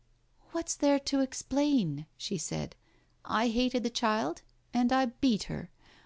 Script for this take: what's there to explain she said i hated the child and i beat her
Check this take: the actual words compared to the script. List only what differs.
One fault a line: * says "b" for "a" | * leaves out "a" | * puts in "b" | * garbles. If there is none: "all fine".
all fine